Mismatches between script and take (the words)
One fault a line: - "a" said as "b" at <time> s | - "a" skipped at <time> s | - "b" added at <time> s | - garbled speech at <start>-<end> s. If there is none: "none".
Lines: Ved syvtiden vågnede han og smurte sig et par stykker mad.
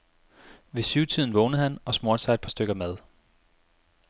none